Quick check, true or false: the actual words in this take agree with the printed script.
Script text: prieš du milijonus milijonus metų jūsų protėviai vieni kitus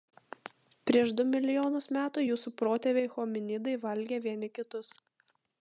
false